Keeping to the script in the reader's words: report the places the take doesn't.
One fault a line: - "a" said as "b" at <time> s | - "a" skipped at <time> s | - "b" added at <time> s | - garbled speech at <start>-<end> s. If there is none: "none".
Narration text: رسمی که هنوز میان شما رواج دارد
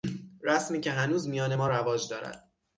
- "شما" said as "ما" at 1.5 s